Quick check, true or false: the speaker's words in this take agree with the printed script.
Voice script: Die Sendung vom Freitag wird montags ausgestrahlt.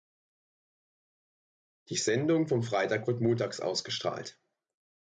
true